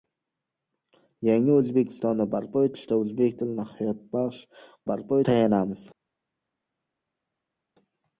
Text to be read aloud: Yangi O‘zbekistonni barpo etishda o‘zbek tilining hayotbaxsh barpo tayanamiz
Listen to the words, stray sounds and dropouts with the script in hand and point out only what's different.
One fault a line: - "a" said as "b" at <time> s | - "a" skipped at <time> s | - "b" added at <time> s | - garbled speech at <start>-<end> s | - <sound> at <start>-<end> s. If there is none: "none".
none